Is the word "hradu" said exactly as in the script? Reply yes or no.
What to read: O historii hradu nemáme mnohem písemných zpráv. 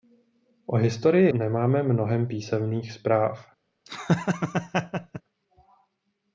no